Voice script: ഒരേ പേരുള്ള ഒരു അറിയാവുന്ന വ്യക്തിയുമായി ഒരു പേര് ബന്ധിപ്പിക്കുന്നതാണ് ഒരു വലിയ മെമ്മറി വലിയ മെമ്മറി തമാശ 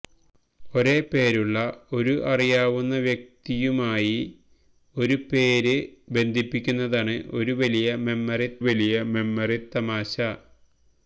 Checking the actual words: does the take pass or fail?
pass